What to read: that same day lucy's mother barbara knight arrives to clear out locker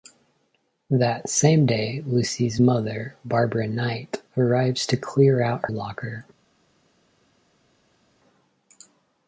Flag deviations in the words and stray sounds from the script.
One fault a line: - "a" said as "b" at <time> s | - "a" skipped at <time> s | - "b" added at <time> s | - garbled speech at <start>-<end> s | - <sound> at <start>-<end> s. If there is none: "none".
none